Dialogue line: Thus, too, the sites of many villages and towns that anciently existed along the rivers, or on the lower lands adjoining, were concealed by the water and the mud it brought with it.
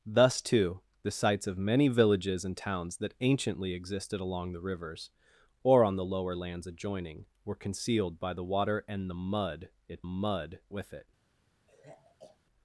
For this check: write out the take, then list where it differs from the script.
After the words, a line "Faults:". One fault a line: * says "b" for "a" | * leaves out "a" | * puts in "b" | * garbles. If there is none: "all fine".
Thus, too, the sites of many villages and towns that anciently existed along the rivers, or on the lower lands adjoining, were concealed by the water and the mud it mud with it.
Faults:
* says "mud" for "brought"